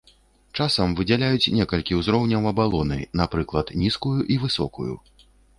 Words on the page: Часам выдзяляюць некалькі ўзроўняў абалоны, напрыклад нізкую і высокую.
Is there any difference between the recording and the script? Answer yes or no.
no